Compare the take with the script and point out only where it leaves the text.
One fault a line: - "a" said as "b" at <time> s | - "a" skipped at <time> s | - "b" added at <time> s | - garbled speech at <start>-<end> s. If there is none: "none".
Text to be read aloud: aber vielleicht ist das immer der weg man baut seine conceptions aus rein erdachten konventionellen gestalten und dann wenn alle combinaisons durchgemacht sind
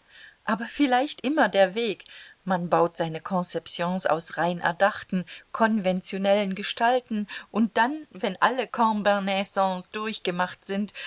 - "ist das" skipped at 1.2 s